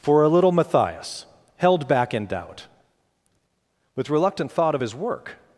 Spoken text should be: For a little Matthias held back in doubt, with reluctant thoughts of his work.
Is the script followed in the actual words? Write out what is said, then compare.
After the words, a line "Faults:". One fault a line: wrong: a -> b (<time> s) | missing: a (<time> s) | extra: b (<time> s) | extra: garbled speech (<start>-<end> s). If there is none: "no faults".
For a little Matthias held back in doubt, with reluctant thought of his work.
Faults:
wrong: thoughts -> thought (4.5 s)